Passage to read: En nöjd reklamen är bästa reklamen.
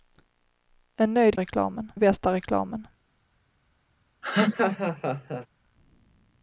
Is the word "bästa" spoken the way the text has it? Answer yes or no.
yes